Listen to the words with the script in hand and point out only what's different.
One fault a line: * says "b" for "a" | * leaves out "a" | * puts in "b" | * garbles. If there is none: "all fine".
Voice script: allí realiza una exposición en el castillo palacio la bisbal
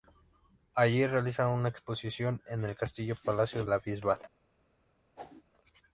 all fine